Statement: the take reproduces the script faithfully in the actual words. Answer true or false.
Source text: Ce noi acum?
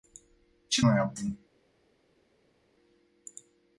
true